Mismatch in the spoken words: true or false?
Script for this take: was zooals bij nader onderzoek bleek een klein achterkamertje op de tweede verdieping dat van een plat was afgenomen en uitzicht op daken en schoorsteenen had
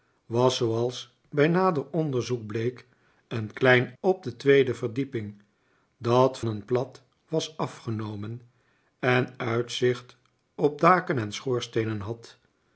true